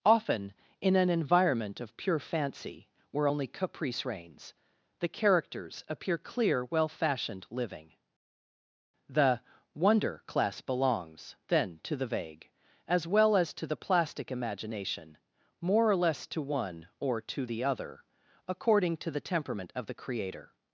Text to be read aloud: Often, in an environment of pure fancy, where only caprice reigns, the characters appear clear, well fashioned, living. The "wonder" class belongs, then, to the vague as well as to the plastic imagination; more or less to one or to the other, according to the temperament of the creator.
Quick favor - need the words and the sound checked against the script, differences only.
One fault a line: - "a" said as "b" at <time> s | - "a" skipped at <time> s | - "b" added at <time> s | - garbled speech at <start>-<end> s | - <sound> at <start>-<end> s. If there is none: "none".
none